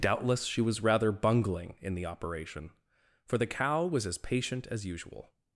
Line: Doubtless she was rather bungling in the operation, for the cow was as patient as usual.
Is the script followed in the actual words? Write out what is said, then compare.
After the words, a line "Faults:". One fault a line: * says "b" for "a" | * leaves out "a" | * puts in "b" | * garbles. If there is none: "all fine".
Doubtless she was rather bungling in the operation, for the cow was as patient as usual.
Faults:
all fine